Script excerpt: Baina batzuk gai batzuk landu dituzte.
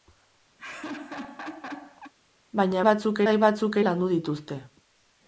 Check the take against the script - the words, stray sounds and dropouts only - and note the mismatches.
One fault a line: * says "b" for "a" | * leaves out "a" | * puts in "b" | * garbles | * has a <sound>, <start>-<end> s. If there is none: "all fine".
* has a laugh, 0.6-2.1 s